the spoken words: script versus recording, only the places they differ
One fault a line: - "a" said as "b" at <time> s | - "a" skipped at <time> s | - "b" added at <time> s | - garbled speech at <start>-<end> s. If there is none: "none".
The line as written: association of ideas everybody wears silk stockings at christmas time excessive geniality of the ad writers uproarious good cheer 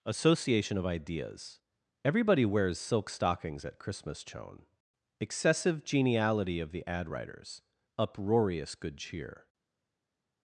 - "time" said as "chone" at 4.2 s